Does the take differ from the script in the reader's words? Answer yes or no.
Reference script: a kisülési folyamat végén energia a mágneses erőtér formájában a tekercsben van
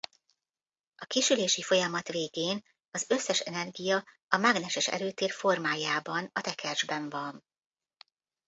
yes